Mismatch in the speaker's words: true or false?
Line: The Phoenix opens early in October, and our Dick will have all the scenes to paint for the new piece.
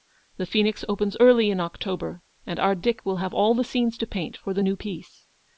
false